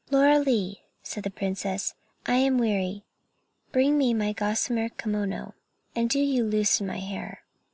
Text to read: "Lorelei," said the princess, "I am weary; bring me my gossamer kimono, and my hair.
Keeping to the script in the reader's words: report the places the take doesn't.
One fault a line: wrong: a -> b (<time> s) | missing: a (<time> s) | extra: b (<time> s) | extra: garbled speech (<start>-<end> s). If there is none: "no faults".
extra: do you loosen (6.1 s)